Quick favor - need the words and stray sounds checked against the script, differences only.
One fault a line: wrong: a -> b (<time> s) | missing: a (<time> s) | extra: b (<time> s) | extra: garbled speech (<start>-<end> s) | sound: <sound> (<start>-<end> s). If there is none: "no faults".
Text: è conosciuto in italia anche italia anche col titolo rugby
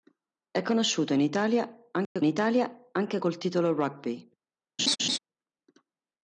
sound: dropout (2.0-2.2 s)
sound: laugh (4.8-5.2 s)